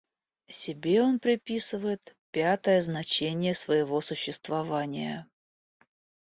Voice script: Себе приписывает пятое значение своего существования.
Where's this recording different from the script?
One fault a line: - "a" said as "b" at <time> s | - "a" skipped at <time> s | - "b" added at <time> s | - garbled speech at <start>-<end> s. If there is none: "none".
- "он" added at 1.0 s